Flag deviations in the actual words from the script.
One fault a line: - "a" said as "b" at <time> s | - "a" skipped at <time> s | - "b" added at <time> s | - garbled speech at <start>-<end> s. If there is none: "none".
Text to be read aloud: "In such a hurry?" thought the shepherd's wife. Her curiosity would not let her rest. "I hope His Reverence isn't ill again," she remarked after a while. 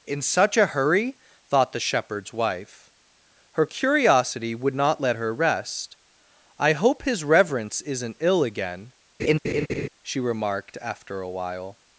none